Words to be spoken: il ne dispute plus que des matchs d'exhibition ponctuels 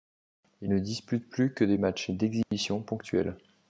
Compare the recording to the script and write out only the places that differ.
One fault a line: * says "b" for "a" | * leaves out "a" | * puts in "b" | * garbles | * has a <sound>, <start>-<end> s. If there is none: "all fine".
* has a dropout, 2.4-2.5 s